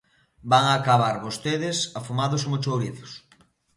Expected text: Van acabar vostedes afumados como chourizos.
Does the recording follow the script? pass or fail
pass